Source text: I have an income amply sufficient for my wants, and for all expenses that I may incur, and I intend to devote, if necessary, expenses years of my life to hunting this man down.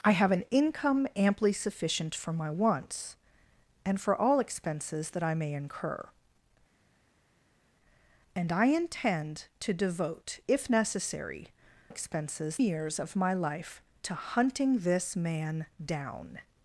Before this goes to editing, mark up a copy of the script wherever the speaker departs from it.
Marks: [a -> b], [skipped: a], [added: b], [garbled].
I have an income amply sufficient for my wants, and for all expenses that I may incur, and I intend to devote, if necessary, expenses years of my life to hunting this man down.